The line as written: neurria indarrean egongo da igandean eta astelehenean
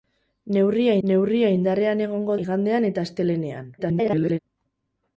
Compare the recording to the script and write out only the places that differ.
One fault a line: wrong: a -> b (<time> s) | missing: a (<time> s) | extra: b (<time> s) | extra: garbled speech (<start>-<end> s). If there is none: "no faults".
extra: neurria (1.1 s)
missing: da (2.4 s)
extra: garbled speech (3.8-4.4 s)